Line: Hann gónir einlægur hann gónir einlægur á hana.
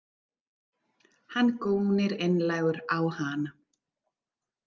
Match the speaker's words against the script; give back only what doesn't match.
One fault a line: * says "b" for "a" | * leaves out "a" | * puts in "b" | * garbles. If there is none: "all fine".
* leaves out "hann gónir einlægur"